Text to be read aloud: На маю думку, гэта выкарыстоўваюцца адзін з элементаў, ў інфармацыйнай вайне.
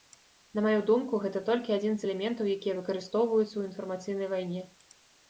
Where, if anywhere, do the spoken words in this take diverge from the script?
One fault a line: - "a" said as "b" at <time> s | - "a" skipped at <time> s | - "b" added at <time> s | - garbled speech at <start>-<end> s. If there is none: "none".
- "выкарыстоўваюцца" said as "толькі" at 1.5 s
- "якія выкарыстоўваюцца" added at 2.6 s